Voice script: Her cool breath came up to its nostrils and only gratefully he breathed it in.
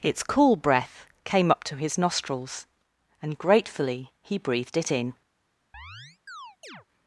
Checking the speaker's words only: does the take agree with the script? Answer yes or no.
no